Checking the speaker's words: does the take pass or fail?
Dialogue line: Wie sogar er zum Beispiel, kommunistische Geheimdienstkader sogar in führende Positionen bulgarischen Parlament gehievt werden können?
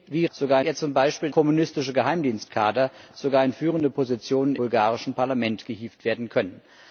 pass